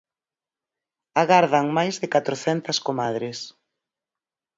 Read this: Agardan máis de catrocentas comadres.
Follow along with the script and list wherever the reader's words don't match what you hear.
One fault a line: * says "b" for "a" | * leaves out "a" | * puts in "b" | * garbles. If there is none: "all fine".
all fine